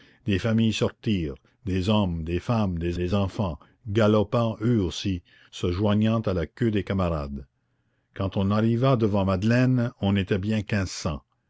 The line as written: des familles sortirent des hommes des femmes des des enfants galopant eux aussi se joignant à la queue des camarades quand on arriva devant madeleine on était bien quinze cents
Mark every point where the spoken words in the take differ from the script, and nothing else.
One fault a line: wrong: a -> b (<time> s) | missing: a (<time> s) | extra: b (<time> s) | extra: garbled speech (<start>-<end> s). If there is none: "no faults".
no faults